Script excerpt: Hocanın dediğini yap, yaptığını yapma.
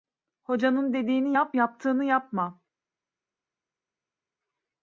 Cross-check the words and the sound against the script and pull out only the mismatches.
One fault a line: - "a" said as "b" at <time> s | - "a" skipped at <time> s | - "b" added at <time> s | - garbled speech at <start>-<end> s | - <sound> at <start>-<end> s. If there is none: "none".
none